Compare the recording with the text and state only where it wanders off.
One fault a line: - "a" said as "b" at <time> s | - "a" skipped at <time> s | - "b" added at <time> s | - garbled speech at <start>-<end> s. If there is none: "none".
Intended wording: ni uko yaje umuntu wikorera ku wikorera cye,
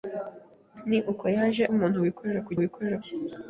none